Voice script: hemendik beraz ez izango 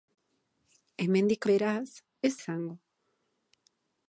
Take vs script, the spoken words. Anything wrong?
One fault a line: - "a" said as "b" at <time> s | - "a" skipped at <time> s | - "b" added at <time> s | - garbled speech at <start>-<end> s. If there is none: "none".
none